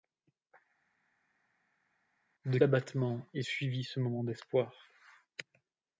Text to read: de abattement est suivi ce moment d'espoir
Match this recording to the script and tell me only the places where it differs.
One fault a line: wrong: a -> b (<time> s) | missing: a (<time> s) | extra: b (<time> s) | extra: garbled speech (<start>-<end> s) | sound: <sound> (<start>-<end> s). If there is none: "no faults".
no faults